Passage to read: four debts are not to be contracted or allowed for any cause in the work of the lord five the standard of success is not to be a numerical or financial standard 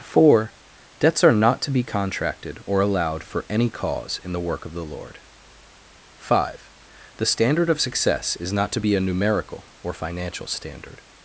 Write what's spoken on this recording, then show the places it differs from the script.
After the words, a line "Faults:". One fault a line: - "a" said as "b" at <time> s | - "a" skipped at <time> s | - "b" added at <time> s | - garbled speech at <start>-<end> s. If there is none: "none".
four debts are not to be contracted or allowed for any cause in the work of the lord five the standard of success is not to be a numerical or financial standard
Faults:
none